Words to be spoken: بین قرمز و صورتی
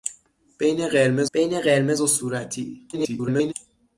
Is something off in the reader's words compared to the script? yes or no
yes